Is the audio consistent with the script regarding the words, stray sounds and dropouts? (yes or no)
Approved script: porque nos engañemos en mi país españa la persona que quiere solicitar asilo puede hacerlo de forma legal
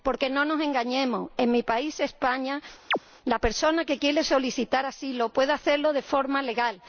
no